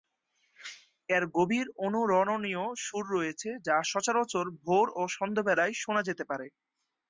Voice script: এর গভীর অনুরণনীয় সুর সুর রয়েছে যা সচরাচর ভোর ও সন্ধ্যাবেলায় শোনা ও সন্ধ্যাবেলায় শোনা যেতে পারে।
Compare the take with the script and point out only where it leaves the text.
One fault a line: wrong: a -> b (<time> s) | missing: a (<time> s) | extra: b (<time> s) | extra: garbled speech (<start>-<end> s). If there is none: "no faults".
missing: সুর (3.0 s)
missing: ও সন্ধ্যাবেলায় শোনা (6.0 s)